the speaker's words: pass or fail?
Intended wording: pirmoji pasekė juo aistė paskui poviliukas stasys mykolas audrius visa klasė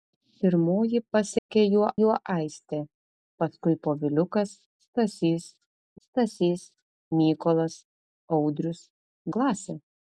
fail